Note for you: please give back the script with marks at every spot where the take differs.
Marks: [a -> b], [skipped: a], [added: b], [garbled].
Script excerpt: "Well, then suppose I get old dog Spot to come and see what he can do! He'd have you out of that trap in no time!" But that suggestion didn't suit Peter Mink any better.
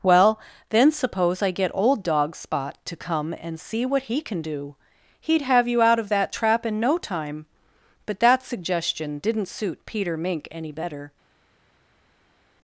"Well, then suppose I get old dog Spot to come and see what he can do! He'd have you out of that trap in no time!" But that suggestion didn't suit Peter Mink any better.